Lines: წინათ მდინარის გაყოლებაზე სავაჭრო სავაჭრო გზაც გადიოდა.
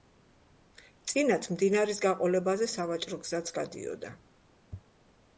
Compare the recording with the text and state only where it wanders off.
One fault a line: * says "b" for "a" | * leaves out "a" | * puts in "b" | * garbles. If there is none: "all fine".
* leaves out "სავაჭრო"